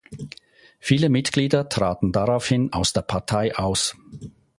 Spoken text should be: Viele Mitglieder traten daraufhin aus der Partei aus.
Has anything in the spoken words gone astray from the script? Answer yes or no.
no